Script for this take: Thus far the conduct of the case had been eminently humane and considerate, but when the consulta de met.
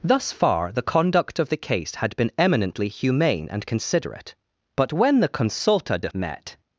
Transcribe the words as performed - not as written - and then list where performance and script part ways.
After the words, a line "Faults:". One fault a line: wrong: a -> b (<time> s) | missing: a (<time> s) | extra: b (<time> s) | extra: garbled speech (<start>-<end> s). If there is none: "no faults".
Thus far the conduct of the case had been eminently humane and considerate, but when the consulta de met.
Faults:
no faults